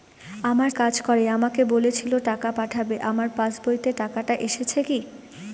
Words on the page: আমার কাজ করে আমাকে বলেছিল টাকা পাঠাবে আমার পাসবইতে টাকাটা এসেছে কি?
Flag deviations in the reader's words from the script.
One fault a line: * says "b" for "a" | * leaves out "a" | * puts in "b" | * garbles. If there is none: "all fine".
all fine